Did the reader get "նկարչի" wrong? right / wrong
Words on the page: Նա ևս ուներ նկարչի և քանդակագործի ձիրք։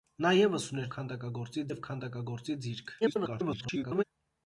wrong